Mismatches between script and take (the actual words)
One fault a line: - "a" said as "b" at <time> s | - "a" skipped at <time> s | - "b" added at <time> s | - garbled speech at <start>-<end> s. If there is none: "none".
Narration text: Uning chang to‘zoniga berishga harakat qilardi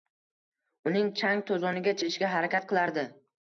none